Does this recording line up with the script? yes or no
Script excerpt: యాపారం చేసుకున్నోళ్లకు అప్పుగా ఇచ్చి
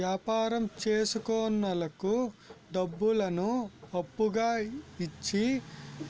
no